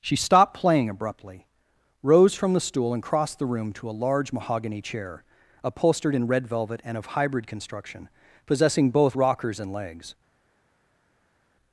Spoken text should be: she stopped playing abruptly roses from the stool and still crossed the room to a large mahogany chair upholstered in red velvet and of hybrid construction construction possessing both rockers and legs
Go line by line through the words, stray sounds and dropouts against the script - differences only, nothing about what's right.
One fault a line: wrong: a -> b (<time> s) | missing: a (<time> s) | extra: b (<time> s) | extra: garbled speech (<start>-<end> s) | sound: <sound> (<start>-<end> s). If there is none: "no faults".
wrong: roses -> rose (2.0 s)
missing: still (3.0 s)
missing: construction (8.1 s)